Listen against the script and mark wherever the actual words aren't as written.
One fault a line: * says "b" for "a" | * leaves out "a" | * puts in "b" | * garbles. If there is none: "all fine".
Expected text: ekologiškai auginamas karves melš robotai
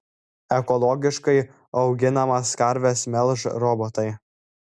all fine